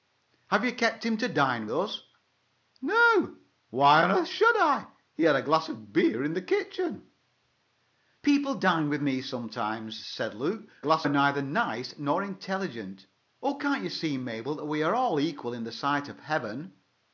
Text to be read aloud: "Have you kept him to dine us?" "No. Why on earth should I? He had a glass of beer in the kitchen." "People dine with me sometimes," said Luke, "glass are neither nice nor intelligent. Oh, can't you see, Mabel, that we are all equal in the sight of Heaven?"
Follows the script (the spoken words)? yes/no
yes